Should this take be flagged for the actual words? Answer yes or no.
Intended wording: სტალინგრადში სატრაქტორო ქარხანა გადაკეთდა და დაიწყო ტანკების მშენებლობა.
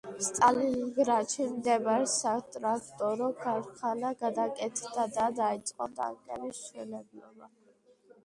yes